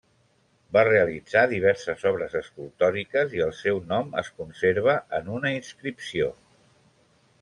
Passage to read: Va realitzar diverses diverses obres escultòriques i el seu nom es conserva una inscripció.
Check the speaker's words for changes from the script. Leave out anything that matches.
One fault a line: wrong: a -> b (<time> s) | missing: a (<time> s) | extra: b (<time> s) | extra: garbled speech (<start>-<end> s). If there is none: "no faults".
missing: diverses (2.0 s)
extra: en (5.2 s)